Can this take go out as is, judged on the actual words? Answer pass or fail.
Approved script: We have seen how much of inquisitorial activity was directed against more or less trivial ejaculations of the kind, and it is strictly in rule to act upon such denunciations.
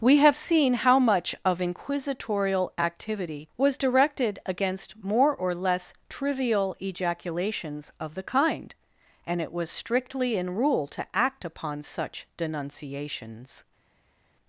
fail